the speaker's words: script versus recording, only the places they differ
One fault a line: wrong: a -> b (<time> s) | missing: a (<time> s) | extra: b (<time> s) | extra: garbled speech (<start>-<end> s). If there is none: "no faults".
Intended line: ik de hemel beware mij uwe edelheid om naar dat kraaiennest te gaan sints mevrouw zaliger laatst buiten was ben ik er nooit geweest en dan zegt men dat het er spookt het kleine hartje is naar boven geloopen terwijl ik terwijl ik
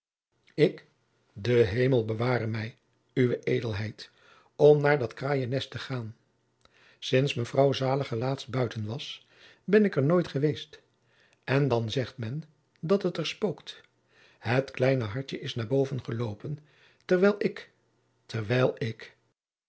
no faults